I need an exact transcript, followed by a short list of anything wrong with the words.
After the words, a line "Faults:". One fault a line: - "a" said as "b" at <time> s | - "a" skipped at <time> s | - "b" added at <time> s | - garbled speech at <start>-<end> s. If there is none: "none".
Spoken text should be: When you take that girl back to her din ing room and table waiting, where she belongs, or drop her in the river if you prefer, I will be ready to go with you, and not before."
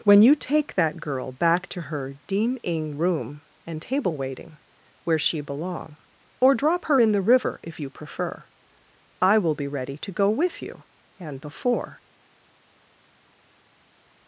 When you take that girl back to her din ing room and table waiting, where she belong, or drop her in the river if you prefer, I will be ready to go with you, and before."
Faults:
- "belongs" said as "belong" at 5.4 s
- "not" skipped at 11.4 s